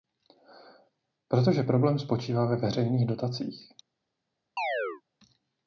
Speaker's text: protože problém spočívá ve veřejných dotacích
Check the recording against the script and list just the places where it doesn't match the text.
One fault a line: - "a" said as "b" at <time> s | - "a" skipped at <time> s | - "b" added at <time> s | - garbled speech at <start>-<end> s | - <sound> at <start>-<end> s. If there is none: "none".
- chirp at 4.6-5.0 s